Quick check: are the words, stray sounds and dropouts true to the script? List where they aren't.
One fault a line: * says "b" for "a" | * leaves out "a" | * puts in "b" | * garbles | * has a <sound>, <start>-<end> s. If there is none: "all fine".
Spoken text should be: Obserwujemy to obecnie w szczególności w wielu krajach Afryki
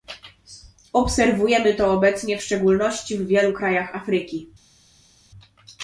all fine